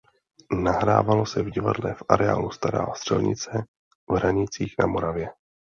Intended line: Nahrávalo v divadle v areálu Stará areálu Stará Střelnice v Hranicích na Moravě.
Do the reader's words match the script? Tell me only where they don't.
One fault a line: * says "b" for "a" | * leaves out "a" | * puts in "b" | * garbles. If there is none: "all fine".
* puts in "se"
* leaves out "areálu Stará"